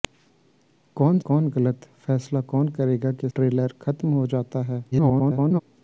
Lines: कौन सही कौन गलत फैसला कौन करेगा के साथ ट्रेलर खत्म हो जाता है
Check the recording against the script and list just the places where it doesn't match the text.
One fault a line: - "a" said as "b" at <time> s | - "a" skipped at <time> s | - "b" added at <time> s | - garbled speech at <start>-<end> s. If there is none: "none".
- "सही" skipped at 1.2 s
- "साथ" skipped at 3.3 s
- garbled speech at 4.9-5.6 s